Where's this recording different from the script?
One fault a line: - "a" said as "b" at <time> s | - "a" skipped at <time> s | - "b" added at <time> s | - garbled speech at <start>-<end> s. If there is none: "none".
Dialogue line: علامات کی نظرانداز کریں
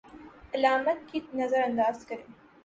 none